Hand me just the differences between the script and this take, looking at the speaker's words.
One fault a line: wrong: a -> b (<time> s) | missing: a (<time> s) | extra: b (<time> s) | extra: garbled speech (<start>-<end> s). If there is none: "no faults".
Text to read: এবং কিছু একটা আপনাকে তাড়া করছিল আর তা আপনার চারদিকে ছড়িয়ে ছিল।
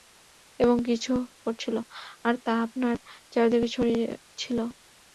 missing: একটা আপনাকে তাড়া (1.1 s)